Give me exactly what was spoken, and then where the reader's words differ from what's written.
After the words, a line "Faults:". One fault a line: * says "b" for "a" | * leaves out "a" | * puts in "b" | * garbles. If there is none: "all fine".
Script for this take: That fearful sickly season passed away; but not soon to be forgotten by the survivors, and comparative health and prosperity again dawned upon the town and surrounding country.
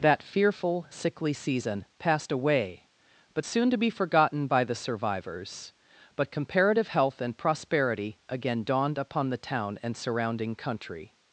That fearful sickly season passed away; but soon to be forgotten by the survivors, but comparative health and prosperity again dawned upon the town and surrounding country.
Faults:
* leaves out "not"
* says "but" for "and"